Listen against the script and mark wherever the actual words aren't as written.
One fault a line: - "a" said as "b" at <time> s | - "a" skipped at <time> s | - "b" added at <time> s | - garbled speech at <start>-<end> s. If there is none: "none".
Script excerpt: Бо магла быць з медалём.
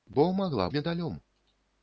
- "быць з" skipped at 0.7 s